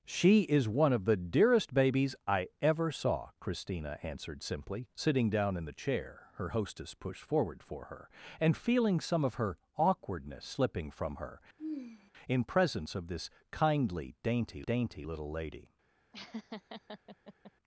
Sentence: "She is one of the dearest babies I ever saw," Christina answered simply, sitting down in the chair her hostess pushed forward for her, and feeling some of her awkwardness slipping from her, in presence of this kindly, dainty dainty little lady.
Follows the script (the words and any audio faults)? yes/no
no